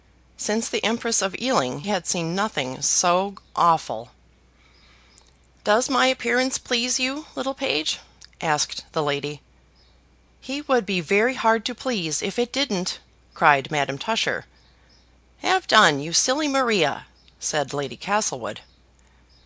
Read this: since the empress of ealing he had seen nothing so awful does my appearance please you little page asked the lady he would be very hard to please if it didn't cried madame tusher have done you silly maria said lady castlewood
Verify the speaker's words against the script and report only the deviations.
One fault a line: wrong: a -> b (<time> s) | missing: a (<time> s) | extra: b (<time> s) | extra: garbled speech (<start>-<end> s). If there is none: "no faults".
missing: he (1.8 s)